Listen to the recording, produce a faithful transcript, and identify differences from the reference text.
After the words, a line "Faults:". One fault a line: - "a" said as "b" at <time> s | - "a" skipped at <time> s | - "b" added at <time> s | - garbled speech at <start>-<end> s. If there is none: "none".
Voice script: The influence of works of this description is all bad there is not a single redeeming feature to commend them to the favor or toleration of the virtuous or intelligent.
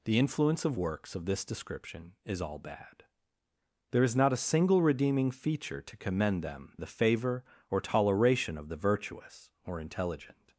The influence of works of this description is all bad there is not a single redeeming feature to commend them the favor or toleration of the virtuous or intelligent.
Faults:
- "to" skipped at 6.8 s